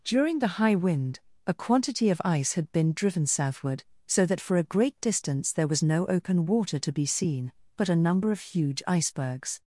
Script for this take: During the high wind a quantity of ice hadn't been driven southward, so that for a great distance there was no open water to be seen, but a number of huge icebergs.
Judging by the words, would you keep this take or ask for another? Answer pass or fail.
fail